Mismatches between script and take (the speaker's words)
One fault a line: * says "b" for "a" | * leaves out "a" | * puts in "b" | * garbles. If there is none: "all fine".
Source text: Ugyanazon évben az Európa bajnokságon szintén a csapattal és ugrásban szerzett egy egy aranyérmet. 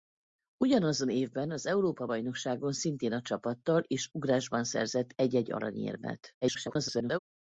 * garbles